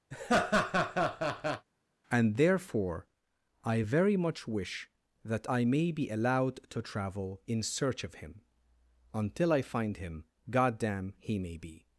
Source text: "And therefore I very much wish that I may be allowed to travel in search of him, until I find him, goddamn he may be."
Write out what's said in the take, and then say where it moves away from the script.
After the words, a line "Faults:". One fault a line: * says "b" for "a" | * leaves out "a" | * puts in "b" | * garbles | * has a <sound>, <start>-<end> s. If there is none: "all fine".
"And therefore I very much wish that I may be allowed to travel in search of him, until I find him, goddamn he may be."
Faults:
* has a laugh, 0.1-1.7 s